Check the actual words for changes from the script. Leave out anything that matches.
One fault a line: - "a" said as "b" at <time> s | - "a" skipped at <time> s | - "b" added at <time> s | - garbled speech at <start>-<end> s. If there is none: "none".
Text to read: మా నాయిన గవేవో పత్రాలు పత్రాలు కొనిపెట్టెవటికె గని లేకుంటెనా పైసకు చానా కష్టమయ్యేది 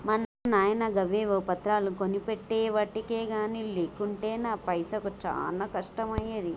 - "పత్రాలు" skipped at 1.9 s